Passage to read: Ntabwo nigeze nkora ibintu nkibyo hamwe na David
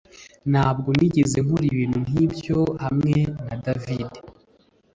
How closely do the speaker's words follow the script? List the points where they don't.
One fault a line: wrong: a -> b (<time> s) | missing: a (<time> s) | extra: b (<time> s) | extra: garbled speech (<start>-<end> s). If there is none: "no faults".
no faults